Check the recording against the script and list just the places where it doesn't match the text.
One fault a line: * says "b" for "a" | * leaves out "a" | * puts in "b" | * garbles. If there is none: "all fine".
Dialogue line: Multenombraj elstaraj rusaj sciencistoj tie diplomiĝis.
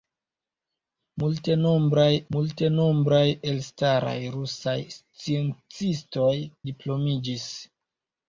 * puts in "multenombraj"
* leaves out "tie"